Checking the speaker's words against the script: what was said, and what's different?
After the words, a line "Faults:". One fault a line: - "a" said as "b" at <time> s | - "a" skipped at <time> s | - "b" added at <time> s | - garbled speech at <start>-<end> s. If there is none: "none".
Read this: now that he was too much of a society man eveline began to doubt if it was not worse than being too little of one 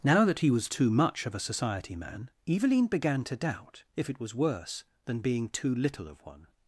now that he was too much of a society man eveline began to doubt if it was worse than being too little of one
Faults:
- "not" skipped at 4.3 s